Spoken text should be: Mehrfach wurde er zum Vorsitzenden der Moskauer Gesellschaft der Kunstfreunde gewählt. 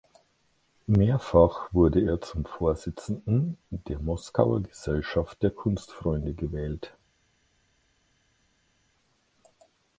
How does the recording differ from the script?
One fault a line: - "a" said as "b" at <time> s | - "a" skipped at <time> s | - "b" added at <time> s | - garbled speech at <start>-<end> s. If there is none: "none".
none